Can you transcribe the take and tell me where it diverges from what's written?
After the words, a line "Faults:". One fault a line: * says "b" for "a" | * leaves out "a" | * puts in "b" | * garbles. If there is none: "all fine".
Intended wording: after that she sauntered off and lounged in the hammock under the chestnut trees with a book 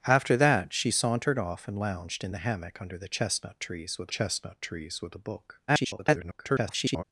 after that she sauntered off and lounged in the hammock under the chestnut trees with chestnut trees with a book [garbled]
Faults:
* puts in "chestnut trees with"
* garbles